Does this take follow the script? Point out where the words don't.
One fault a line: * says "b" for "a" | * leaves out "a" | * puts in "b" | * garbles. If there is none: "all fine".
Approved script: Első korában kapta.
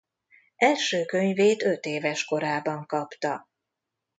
* puts in "könyvét ötéves"